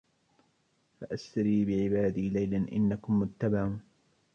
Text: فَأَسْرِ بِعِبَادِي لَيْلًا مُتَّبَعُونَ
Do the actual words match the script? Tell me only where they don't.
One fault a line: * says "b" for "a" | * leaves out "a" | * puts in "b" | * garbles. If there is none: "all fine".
* puts in "إِنَّكُمْ"